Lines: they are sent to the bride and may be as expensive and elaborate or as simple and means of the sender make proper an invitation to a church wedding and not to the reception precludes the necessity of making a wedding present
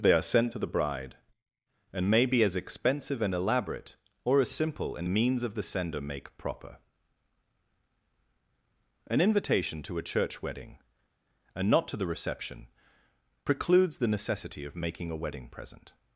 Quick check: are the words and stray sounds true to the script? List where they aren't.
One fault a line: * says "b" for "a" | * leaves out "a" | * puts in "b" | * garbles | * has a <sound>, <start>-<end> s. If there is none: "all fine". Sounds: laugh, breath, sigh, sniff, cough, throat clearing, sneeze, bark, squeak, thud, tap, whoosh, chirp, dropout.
all fine